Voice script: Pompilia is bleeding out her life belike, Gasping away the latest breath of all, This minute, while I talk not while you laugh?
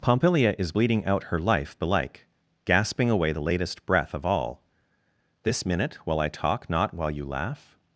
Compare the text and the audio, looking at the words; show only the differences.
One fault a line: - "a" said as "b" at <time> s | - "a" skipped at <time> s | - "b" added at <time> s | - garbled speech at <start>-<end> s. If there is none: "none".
none